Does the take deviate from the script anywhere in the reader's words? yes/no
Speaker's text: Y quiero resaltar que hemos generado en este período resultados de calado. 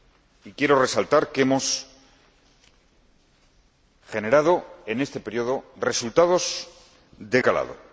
no